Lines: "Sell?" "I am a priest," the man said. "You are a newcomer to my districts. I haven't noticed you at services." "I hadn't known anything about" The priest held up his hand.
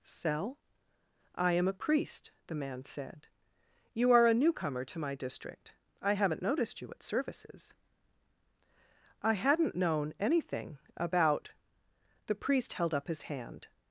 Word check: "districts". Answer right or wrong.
wrong